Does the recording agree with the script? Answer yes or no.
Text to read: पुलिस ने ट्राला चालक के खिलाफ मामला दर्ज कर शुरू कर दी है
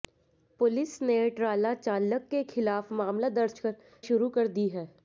yes